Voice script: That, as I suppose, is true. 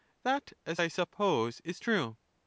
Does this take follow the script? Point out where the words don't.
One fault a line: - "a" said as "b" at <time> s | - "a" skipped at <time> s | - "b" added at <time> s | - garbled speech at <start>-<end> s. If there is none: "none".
none